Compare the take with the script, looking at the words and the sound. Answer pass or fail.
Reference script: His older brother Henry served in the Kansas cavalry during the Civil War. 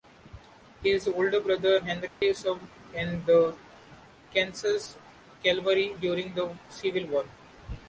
fail